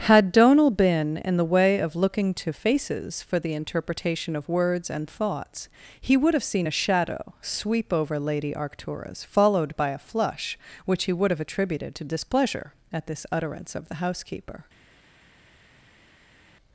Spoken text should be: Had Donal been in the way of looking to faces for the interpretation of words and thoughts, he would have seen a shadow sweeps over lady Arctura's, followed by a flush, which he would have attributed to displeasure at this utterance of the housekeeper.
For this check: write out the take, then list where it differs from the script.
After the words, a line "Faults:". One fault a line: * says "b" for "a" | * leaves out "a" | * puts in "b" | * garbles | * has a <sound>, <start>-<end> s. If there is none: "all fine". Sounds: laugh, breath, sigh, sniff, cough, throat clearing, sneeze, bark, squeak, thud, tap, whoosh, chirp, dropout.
Had Donal been in the way of looking to faces for the interpretation of words and thoughts, he would have seen a shadow sweep over lady Arctura's, followed by a flush, which he would have attributed to displeasure at this utterance of the housekeeper.
Faults:
* says "sweep" for "sweeps"